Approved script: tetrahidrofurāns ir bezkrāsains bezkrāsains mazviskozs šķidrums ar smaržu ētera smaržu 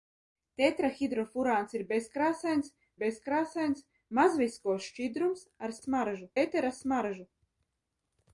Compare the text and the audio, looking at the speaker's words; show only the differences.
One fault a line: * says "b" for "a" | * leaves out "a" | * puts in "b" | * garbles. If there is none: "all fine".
all fine